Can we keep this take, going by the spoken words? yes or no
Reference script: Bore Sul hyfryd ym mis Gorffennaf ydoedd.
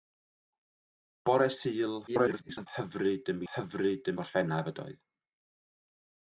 no